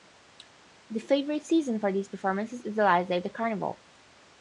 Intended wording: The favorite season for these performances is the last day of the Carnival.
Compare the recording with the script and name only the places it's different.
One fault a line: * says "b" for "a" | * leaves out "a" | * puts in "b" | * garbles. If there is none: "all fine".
all fine